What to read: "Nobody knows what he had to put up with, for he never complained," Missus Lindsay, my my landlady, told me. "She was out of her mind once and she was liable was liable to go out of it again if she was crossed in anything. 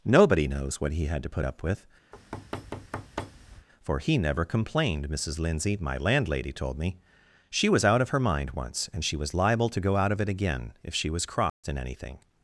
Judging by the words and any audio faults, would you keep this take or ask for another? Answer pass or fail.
fail